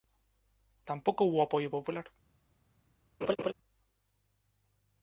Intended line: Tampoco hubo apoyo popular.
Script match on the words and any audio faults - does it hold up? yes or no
no